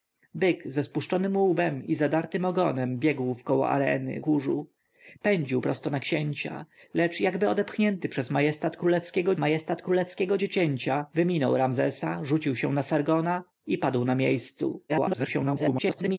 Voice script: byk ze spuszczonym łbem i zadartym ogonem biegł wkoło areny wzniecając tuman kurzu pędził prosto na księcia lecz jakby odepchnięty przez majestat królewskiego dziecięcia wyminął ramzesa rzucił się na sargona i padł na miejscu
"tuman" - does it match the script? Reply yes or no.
no